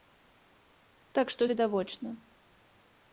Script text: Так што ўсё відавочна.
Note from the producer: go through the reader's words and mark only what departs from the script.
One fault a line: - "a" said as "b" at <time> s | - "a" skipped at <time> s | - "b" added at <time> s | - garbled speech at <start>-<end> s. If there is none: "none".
- "ўсё" skipped at 1.4 s